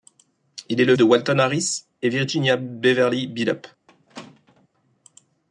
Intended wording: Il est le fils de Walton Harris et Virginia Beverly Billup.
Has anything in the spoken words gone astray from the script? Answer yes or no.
yes